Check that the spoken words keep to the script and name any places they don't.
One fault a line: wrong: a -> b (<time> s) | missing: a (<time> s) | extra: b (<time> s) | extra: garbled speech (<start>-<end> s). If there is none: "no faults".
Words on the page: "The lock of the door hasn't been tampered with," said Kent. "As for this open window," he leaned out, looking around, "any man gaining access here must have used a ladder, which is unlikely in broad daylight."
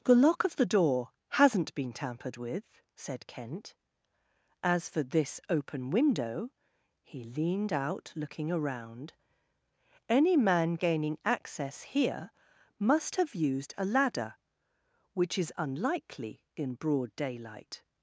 no faults